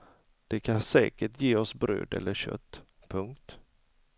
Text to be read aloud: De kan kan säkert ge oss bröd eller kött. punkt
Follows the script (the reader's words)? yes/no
no